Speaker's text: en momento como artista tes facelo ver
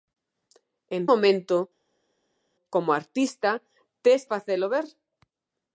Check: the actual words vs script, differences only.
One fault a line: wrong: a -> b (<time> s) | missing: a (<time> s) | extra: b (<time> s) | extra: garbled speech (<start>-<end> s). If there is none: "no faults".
no faults